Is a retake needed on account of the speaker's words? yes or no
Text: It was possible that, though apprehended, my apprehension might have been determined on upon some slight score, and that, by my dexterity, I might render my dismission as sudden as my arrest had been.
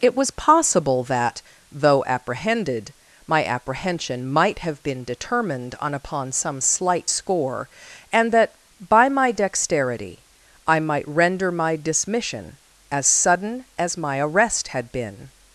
no